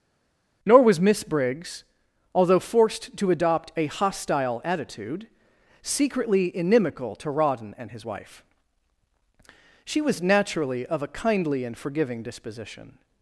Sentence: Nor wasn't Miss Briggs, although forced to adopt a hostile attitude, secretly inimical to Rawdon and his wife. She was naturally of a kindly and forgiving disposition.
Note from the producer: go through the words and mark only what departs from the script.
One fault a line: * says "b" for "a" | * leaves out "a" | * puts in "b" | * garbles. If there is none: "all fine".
* says "was" for "wasn't"